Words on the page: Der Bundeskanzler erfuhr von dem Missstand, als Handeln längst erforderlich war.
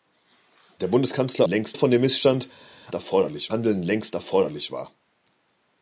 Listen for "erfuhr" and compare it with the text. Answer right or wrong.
wrong